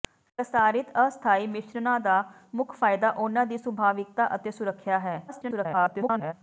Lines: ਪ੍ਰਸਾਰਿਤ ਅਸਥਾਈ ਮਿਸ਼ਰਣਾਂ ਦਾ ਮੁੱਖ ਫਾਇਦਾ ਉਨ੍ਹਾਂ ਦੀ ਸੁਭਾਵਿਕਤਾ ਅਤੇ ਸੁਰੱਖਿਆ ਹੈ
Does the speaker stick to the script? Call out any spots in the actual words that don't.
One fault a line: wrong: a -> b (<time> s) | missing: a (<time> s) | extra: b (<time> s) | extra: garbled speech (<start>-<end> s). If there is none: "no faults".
extra: garbled speech (5.3-6.3 s)